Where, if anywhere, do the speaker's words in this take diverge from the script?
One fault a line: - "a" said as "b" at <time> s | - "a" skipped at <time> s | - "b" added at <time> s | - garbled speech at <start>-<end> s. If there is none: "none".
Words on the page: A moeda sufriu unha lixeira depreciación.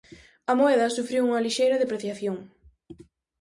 none